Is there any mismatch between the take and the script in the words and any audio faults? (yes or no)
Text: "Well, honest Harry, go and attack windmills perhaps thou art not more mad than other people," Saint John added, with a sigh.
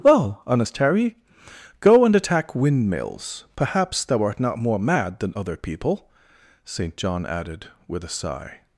no